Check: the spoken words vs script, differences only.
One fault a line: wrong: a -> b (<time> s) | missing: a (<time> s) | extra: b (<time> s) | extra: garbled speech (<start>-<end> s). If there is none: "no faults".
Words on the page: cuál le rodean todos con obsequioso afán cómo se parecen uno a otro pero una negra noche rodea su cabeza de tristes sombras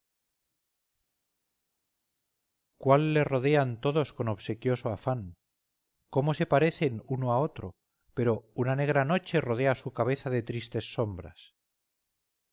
no faults